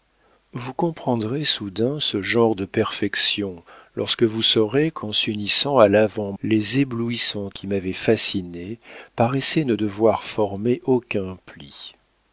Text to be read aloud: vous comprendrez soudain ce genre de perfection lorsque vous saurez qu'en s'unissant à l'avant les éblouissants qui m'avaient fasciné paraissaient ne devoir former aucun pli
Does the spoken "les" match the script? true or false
true